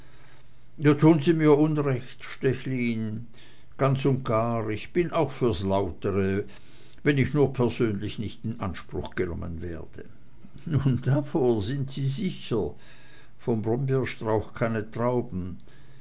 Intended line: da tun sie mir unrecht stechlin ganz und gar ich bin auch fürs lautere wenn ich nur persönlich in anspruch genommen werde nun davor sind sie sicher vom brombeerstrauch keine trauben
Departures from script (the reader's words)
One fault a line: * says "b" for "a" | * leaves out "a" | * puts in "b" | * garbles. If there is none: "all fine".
* puts in "nicht"